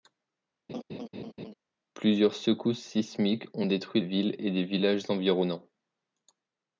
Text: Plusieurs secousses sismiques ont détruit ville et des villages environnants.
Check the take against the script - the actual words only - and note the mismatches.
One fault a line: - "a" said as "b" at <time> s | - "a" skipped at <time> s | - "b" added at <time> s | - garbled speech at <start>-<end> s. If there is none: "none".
none